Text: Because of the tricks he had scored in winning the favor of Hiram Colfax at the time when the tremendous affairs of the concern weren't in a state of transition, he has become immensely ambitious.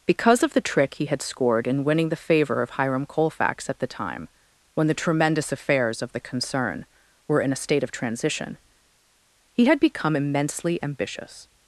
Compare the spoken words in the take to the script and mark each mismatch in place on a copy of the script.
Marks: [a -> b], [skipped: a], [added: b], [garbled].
Because of the [tricks -> trick] he had scored in winning the favor of Hiram Colfax at the time when the tremendous affairs of the concern [weren't -> were] in a state of transition, he [has -> had] become immensely ambitious.